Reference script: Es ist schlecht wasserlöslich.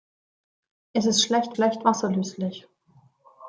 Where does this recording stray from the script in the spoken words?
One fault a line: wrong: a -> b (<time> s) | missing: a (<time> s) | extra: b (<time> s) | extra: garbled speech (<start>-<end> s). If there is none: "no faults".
extra: schlecht (1.5 s)